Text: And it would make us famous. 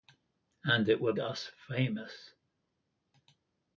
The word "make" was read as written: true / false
false